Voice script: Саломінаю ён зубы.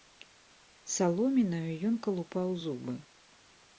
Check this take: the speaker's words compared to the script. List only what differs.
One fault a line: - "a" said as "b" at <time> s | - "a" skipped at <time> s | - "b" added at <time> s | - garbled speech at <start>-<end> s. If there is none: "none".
- "калупаў" added at 2.1 s